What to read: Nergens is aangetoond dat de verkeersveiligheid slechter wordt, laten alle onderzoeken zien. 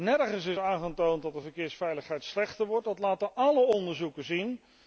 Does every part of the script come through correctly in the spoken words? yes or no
no